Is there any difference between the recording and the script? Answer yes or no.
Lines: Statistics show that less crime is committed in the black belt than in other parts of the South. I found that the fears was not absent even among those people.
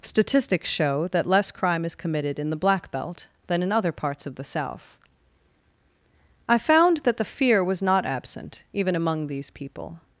yes